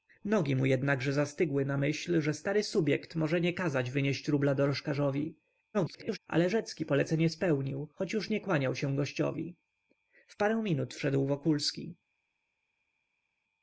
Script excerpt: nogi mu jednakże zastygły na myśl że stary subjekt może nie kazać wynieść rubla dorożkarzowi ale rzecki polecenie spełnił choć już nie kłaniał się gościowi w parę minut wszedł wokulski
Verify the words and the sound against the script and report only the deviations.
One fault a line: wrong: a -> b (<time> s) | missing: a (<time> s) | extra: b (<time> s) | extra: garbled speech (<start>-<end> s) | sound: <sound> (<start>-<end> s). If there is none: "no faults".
extra: garbled speech (5.7-6.2 s)